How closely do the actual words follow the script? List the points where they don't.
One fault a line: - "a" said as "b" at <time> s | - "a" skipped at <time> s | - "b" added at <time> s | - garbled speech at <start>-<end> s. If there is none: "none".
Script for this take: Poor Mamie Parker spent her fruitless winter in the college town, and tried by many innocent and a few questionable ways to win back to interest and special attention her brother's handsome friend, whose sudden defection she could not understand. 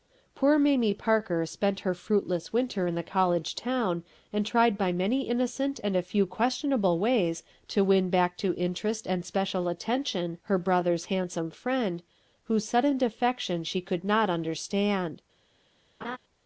none